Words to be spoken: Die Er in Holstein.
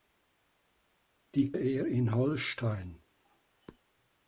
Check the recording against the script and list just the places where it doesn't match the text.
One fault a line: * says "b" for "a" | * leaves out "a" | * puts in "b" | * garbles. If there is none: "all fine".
all fine